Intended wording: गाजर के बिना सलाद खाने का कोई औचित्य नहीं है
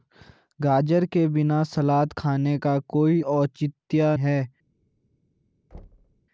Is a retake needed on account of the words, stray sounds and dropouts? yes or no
yes